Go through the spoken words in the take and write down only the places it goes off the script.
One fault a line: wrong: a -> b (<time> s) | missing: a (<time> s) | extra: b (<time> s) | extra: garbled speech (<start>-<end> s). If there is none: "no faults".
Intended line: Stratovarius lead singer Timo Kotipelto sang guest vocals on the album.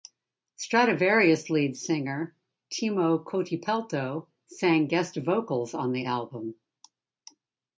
no faults